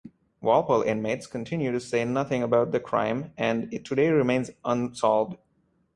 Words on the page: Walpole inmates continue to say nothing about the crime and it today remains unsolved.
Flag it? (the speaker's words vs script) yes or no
no